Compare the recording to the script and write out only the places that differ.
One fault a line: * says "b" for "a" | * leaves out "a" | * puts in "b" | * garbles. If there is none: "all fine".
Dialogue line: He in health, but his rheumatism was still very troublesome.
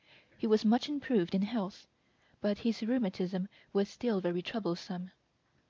* puts in "was much improved"